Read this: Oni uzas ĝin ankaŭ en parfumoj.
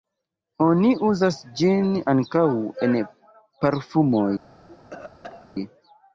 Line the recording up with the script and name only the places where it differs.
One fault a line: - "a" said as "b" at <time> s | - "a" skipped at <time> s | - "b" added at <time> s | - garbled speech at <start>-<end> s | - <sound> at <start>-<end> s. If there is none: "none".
- cough at 4.7-5.5 s